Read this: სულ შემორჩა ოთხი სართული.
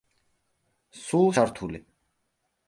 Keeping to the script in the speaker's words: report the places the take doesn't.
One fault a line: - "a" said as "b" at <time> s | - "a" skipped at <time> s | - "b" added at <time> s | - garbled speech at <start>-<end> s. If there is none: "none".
- "შემორჩა ოთხი" skipped at 1.3 s